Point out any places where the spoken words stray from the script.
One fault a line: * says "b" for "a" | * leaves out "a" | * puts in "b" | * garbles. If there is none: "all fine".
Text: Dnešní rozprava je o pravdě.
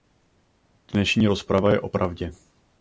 all fine